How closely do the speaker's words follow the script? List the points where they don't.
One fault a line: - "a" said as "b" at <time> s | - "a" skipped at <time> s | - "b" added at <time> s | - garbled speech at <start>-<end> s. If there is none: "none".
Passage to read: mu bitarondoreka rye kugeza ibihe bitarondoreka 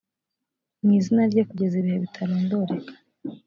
- "bitarondoreka" said as "izina" at 1.0 s